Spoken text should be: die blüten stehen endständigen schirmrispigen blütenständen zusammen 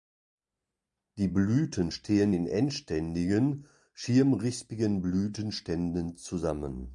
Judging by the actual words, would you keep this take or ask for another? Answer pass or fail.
fail